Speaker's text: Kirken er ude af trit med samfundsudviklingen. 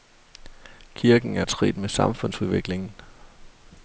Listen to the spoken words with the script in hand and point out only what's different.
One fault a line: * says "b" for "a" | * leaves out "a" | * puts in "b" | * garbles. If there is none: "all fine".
* leaves out "ude"